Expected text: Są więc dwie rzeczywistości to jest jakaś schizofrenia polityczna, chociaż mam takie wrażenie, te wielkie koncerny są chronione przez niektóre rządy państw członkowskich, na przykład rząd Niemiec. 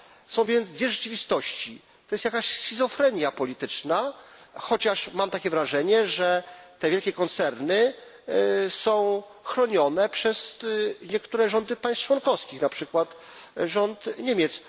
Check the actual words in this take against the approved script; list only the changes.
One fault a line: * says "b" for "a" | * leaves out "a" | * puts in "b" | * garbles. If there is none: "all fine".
* puts in "że"